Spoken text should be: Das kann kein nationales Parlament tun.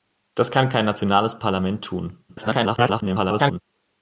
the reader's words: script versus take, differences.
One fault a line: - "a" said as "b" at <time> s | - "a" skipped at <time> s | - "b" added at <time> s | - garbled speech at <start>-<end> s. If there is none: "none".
- garbled speech at 2.3-3.6 s